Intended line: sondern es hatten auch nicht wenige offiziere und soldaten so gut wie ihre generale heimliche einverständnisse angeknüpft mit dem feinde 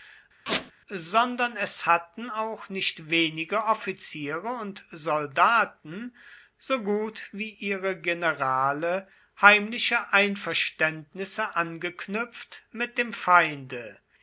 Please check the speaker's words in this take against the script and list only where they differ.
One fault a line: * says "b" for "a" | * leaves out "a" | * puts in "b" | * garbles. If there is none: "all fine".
all fine